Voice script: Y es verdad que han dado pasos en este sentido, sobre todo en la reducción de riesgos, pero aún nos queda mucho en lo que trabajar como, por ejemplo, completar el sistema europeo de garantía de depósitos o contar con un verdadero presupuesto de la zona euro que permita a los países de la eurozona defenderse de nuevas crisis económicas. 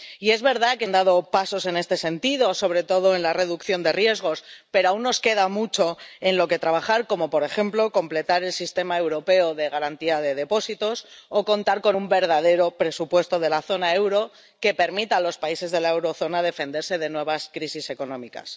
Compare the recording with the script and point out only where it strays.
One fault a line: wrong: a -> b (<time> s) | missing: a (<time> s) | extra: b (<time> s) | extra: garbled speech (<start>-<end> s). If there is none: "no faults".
no faults